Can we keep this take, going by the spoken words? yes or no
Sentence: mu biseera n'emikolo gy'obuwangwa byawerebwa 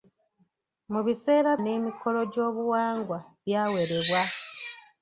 yes